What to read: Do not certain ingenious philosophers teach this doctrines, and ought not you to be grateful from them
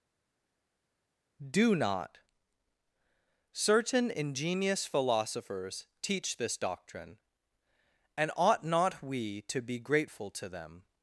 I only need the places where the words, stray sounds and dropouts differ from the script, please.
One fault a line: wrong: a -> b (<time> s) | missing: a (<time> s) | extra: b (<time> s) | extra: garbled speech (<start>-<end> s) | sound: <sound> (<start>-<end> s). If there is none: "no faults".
wrong: doctrines -> doctrine (6.6 s)
wrong: you -> we (9.0 s)
wrong: from -> to (10.3 s)